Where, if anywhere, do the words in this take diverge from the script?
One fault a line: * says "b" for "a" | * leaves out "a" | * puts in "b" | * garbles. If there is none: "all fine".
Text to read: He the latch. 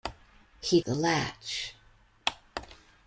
all fine